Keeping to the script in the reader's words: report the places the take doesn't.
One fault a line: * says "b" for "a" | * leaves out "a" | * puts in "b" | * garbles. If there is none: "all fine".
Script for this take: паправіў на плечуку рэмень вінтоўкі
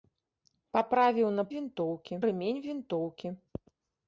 * says "вінтоўкі" for "плечуку"